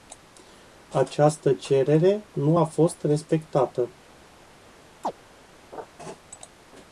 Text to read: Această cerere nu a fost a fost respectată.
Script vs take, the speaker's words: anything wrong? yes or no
yes